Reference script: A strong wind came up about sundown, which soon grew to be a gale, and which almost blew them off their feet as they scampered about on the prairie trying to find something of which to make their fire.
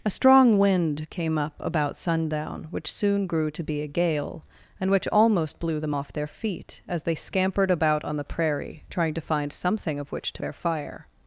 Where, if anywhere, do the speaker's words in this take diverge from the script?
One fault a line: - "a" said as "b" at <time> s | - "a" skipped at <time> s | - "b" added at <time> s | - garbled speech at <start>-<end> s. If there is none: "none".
- "make" skipped at 10.4 s